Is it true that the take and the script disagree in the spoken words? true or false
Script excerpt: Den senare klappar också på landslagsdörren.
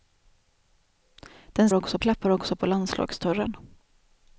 true